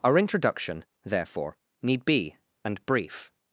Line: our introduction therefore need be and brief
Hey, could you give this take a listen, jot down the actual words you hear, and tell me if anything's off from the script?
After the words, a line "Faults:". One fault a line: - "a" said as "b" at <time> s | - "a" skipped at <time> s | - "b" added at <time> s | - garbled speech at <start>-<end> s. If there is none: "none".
our introduction therefore need be and brief
Faults:
none